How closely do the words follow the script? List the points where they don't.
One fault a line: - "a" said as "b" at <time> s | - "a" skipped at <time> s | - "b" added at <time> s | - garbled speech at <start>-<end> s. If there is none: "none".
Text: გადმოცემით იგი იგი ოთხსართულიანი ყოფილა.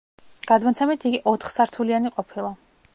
- "იგი" skipped at 1.2 s